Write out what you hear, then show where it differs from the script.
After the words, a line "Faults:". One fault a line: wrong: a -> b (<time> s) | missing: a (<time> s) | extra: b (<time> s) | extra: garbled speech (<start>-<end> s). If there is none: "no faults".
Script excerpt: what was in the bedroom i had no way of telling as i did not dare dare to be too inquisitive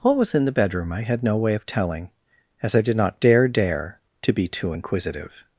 what was in the bedroom i had no way of telling as i did not dare dare to be too inquisitive
Faults:
no faults